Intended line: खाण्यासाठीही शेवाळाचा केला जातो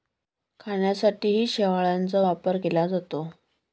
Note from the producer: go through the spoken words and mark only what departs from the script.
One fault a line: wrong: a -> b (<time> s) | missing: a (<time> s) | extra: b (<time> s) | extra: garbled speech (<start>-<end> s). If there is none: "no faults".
extra: वापर (2.2 s)